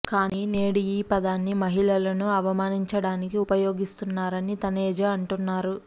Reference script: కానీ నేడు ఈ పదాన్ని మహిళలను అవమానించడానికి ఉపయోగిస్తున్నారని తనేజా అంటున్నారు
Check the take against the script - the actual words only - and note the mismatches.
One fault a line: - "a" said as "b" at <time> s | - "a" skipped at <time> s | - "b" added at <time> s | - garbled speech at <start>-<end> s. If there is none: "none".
none